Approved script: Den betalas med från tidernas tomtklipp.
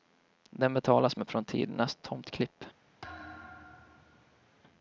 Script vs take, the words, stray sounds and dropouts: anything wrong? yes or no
yes